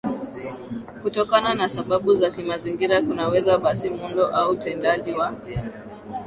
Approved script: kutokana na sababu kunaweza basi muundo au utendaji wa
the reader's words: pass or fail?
fail